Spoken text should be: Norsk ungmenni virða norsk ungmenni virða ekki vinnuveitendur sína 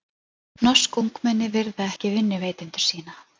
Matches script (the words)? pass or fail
fail